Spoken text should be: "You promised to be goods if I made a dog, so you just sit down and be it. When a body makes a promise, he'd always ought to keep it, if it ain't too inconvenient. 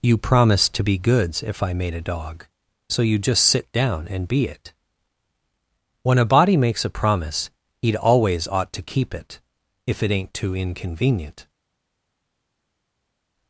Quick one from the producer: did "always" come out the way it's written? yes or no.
yes